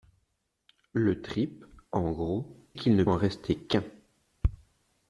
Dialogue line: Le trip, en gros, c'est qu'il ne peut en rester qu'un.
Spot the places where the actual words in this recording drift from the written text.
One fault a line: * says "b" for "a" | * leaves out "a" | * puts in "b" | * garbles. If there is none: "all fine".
* leaves out "c'est"
* leaves out "peut"